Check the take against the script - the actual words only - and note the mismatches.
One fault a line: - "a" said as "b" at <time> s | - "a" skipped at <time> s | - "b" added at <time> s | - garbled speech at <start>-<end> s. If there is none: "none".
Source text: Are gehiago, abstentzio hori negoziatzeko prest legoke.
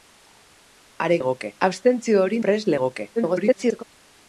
- "gehiago" said as "legoke" at 1.2 s
- "negoziatzeko" skipped at 2.4 s
- garbled speech at 3.2-3.8 s